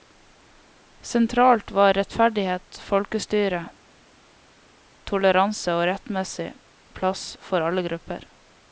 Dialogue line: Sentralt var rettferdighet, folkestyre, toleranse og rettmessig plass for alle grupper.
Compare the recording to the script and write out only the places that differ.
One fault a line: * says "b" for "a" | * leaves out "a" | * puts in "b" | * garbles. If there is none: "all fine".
all fine